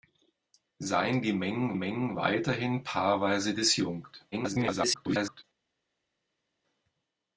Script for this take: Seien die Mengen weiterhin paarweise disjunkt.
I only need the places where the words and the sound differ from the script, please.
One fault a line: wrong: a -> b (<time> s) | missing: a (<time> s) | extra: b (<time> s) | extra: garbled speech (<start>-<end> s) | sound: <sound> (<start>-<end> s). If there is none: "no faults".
extra: Mengen (1.7 s)
extra: garbled speech (4.3-5.4 s)